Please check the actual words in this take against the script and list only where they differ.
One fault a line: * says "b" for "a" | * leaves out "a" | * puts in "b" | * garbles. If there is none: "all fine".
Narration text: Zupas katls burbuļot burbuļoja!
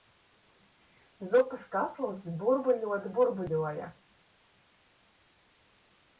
all fine